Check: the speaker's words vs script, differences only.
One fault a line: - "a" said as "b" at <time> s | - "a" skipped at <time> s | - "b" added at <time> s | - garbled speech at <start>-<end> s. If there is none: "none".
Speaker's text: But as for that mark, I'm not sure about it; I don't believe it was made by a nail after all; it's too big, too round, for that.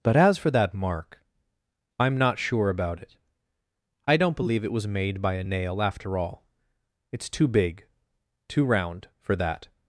none